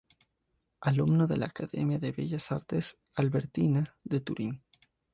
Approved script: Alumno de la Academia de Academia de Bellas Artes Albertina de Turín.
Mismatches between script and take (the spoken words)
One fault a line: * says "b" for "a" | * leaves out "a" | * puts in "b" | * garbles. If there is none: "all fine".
* leaves out "Academia de"